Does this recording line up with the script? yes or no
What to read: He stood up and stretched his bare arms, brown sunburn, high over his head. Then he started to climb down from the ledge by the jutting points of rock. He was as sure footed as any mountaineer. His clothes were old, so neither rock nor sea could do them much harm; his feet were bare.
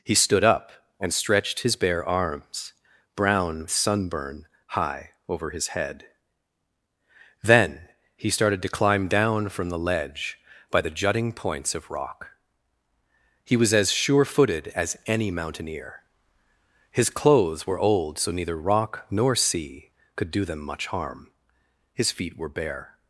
yes